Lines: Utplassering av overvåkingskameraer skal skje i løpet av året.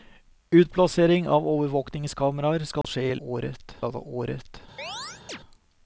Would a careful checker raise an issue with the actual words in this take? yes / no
yes